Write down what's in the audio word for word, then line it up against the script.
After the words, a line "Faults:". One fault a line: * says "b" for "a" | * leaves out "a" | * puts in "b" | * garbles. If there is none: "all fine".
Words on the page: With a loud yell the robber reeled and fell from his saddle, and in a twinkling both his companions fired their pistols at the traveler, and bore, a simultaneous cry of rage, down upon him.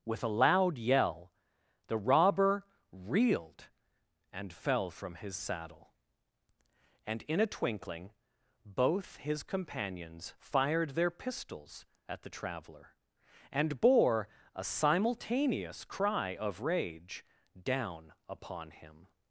With a loud yell the robber reeled and fell from his saddle, and in a twinkling both his companions fired their pistols at the traveler, and bore, a simultaneous cry of rage, down upon him.
Faults:
all fine